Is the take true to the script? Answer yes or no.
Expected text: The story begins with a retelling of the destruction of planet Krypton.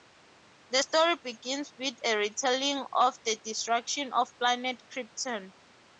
yes